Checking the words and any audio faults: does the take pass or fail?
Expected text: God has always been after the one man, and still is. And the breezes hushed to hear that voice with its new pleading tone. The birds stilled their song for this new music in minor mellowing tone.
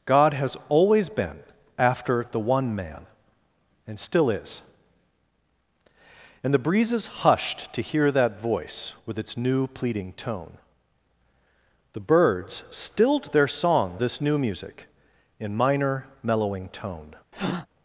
fail